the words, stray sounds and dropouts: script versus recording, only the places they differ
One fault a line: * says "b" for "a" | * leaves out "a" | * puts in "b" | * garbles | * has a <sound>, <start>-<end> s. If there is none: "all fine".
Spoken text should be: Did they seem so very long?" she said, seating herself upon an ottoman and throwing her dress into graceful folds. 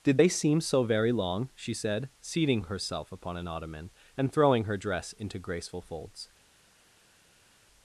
all fine